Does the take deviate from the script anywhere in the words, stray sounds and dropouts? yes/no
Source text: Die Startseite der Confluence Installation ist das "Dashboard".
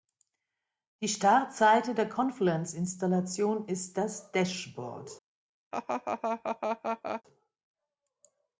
yes